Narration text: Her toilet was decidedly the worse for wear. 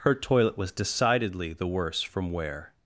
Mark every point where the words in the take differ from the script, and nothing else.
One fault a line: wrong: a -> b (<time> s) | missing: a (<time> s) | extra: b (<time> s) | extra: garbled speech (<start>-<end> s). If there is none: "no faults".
wrong: for -> from (2.0 s)